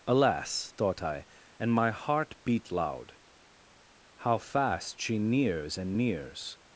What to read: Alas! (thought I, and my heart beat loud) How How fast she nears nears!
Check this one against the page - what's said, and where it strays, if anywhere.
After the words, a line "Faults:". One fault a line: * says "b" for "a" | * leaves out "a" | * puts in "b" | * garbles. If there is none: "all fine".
Alas! (thought I, and my heart beat loud) How fast she nears and nears!
Faults:
* leaves out "How"
* puts in "and"